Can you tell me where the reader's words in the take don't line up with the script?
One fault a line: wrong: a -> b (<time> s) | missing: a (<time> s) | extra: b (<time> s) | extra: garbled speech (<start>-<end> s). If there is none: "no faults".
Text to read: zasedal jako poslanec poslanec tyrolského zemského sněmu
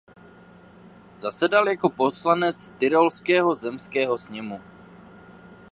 missing: poslanec (2.7 s)